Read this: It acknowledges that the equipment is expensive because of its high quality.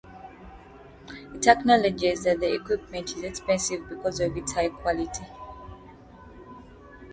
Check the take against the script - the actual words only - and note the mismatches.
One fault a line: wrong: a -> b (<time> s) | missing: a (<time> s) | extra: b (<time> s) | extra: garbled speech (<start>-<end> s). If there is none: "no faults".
no faults